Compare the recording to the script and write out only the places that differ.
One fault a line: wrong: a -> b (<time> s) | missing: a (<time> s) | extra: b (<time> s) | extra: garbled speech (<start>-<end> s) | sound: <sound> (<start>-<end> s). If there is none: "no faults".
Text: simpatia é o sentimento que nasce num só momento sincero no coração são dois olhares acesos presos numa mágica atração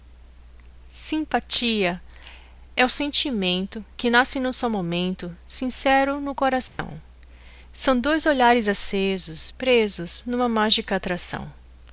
sound: dropout (6.7-6.8 s)